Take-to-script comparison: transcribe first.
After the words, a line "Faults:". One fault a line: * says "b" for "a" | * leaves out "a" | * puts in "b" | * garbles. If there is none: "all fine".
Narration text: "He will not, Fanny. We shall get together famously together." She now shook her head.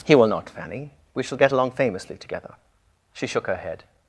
"He will not, Fanny. We shall get along famously together." She shook her head.
Faults:
* says "along" for "together"
* leaves out "now"